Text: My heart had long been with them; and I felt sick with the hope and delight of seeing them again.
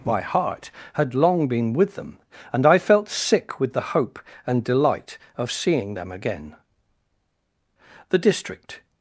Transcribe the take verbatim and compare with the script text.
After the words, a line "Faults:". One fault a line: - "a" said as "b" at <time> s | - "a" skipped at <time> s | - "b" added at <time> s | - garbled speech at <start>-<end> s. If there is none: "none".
My heart had long been with them; and I felt sick with the hope and delight of seeing them again. The district
Faults:
- "The district" added at 8.1 s